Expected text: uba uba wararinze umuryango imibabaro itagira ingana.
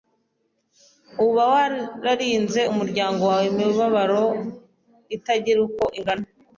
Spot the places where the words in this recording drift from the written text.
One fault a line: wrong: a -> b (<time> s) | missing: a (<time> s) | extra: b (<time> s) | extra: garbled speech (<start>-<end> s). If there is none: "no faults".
missing: uba (1.4 s)
extra: wawe (3.3 s)
extra: uko (5.7 s)